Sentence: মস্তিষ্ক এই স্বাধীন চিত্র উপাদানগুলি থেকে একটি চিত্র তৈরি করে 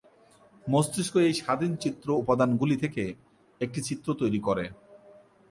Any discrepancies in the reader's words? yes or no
no